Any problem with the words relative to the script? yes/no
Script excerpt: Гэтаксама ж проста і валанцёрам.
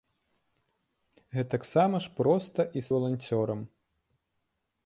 no